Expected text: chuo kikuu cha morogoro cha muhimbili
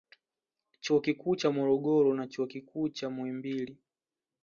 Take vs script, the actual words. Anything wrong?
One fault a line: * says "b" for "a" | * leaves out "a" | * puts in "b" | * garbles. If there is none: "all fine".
* puts in "na chuo kikuu"